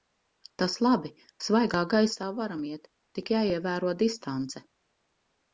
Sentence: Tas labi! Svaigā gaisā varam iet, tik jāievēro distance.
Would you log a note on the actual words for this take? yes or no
no